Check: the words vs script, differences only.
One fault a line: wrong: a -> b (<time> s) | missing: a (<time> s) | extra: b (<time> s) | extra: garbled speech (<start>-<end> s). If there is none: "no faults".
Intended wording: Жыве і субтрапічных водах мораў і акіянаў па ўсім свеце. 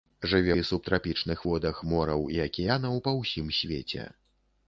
no faults